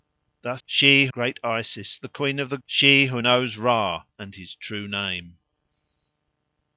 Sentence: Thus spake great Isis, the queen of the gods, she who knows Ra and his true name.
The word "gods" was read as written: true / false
false